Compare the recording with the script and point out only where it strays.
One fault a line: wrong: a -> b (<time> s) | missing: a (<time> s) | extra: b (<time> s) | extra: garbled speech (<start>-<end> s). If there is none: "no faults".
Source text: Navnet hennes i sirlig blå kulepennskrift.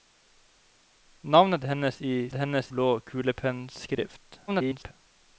wrong: sirlig -> hennes (2.3 s)
extra: garbled speech (4.5-4.9 s)